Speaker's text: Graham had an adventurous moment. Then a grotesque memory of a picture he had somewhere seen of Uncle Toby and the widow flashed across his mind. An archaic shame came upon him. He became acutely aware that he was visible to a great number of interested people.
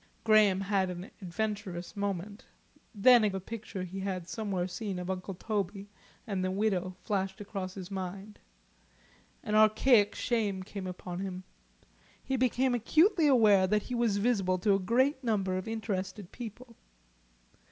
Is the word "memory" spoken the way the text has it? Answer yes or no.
no